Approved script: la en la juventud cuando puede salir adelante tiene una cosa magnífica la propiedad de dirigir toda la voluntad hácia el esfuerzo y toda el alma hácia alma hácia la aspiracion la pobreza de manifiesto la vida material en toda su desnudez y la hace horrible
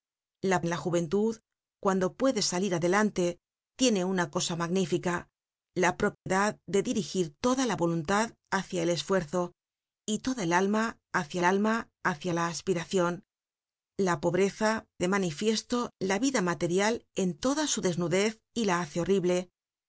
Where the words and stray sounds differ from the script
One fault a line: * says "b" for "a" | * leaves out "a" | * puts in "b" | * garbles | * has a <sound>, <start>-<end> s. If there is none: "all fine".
* has a dropout, 6.1-6.3 s